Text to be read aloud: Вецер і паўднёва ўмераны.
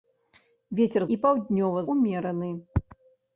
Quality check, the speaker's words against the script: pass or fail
pass